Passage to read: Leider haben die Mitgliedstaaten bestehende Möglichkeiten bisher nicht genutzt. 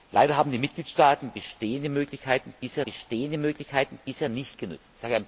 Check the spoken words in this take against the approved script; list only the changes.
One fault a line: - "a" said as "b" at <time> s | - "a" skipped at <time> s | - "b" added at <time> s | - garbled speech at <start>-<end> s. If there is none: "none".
- "bestehende Möglichkeiten bisher" added at 2.8 s